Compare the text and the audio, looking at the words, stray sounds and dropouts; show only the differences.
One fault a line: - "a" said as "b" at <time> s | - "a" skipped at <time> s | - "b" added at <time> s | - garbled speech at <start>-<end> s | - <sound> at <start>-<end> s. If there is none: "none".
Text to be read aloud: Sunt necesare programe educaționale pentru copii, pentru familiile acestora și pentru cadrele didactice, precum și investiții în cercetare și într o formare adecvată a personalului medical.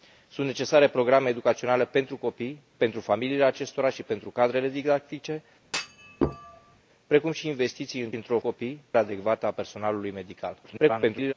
- thud at 5.6-6.8 s
- "cercetare și" skipped at 8.1 s
- "formare" said as "copii" at 8.4 s
- garbled speech at 10.6-11.3 s